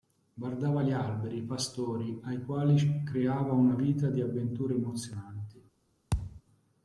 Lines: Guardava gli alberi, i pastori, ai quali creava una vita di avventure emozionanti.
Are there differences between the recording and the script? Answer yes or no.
no